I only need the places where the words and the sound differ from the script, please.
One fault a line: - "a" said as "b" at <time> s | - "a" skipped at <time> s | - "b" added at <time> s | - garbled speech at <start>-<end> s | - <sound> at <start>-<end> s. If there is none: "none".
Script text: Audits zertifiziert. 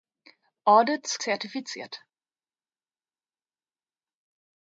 none